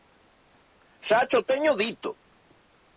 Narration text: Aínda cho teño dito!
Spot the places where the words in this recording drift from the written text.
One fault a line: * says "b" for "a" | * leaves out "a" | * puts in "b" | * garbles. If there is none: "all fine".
* says "Xa" for "Aínda"